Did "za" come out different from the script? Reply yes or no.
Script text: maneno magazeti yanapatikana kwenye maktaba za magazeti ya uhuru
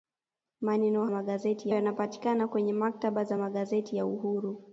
no